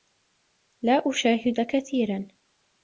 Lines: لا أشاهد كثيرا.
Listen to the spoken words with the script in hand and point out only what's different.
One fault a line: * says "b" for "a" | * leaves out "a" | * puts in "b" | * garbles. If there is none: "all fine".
all fine